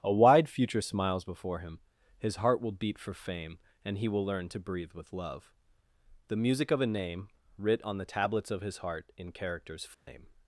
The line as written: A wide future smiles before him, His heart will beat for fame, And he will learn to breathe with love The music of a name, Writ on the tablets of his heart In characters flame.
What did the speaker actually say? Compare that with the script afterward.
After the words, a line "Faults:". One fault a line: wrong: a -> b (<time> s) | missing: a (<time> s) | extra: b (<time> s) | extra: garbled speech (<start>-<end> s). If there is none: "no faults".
A wide future smiles before him, His heart will beat for fame, And he will learn to breathe with love The music of a name, Writ on the tablets of his heart In characters flame.
Faults:
no faults